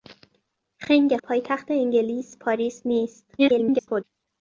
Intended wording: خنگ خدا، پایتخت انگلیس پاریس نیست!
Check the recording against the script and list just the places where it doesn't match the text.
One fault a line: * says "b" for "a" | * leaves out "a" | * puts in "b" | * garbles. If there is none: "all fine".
* leaves out "خدا"
* garbles